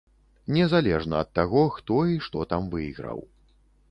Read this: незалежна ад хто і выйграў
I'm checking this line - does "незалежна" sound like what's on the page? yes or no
yes